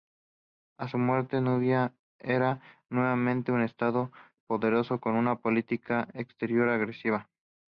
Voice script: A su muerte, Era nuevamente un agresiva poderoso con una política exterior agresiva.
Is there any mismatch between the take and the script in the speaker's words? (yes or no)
yes